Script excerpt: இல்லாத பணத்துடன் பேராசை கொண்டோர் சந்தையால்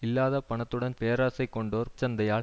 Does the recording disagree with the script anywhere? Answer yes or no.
no